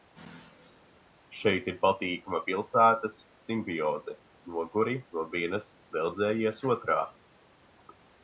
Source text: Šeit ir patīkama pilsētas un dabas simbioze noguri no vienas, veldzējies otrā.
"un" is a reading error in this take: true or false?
true